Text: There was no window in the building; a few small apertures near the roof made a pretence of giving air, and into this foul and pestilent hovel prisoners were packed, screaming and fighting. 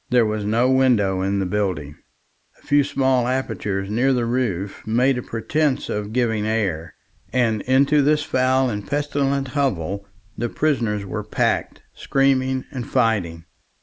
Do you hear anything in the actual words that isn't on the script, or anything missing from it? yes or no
yes